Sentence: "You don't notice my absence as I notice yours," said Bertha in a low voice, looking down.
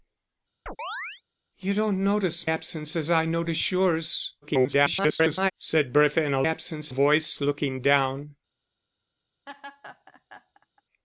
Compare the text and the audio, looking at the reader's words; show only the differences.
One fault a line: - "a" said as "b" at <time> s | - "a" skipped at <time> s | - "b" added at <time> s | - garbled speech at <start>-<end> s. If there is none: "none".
- "my" skipped at 2.5 s
- garbled speech at 4.4-5.5 s
- "low" said as "absence" at 6.4 s